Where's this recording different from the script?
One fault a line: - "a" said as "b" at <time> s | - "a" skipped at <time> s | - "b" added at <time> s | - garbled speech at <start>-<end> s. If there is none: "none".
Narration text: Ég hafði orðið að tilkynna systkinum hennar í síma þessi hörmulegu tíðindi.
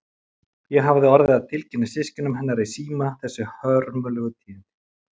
none